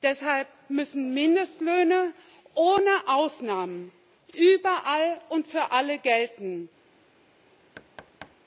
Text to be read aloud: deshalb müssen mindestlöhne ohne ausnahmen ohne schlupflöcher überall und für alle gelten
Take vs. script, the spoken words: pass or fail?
fail